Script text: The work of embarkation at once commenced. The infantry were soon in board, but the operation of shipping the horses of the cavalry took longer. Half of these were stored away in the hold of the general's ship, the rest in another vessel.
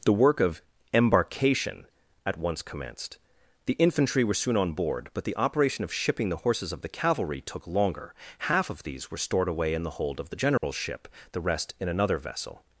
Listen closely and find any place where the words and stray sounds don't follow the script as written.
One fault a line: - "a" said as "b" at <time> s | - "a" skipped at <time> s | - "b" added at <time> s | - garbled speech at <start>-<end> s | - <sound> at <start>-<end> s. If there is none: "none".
- "in" said as "on" at 4.6 s
- dropout at 10.6-10.6 s